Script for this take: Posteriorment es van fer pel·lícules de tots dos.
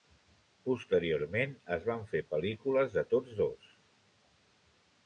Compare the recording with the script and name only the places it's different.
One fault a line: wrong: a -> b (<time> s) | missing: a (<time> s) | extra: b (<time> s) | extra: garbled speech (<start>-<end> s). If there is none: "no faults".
no faults